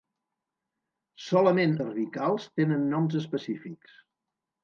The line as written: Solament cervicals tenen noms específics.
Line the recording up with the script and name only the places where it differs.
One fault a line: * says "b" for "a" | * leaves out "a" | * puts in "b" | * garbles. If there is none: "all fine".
all fine